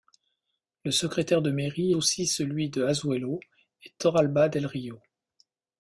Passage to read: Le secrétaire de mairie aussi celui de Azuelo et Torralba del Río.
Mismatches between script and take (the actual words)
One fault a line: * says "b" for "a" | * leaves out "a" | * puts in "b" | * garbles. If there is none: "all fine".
all fine